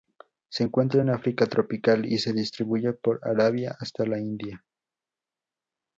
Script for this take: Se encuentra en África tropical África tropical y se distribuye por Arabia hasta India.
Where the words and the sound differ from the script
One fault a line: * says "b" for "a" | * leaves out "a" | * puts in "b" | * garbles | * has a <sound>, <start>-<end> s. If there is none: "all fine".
* leaves out "África tropical"
* puts in "la"